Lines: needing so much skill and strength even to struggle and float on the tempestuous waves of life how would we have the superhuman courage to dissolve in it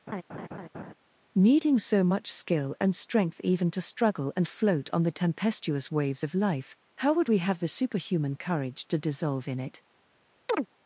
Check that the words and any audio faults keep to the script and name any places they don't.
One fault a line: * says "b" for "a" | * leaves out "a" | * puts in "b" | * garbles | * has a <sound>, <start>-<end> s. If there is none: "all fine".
* has a laugh, 0.1-0.9 s
* has a chirp, 10.5-10.7 s